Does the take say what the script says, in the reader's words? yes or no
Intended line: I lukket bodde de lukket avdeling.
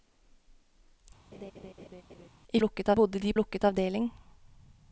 yes